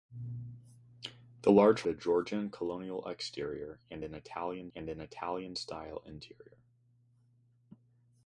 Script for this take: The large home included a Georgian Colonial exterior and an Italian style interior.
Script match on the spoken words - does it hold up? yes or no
no